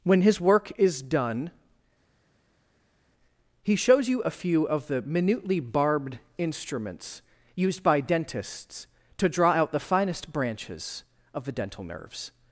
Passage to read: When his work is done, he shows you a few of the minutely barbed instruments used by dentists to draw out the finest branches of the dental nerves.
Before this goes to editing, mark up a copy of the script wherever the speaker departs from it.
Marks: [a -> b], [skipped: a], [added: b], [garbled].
When his work is done, he shows you a few of the minutely barbed instruments used by dentists to draw out the finest branches of the dental nerves.